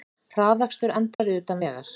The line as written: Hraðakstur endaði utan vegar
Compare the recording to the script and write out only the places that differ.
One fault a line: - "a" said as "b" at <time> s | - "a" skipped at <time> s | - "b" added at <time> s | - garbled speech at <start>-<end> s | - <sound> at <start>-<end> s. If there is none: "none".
- dropout at 1.1-1.2 s